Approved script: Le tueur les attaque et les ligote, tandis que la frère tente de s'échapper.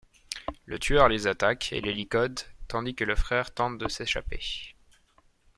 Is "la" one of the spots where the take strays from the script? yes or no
yes